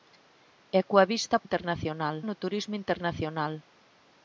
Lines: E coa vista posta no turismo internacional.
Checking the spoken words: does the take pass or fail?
fail